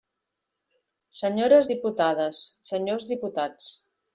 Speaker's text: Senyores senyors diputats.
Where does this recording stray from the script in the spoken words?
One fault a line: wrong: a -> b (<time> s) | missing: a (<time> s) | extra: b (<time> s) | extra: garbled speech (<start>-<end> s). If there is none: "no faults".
extra: diputades (1.7 s)